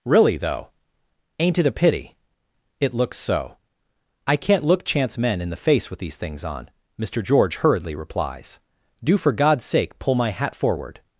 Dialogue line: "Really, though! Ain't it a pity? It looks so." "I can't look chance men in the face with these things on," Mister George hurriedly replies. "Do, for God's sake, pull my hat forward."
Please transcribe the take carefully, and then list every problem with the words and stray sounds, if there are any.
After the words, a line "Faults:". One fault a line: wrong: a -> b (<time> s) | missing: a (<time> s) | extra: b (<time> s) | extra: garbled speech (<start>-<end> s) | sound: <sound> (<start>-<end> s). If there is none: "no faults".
"Really, though! Ain't it a pity? It looks so." "I can't look chance men in the face with these things on," Mister George hurriedly replies. "Do, for God's sake, pull my hat forward."
Faults:
no faults